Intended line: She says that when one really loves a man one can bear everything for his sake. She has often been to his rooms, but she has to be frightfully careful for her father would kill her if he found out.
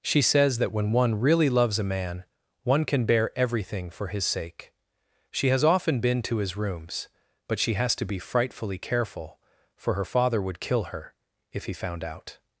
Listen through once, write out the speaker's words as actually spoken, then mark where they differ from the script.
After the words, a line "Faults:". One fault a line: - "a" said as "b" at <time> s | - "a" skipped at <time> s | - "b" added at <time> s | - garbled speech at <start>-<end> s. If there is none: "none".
She says that when one really loves a man one can bear everything for his sake. She has often been to his rooms, but she has to be frightfully careful for her father would kill her if he found out.
Faults:
none